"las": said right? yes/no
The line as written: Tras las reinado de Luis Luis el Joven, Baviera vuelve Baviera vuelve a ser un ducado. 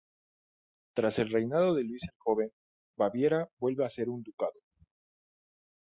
no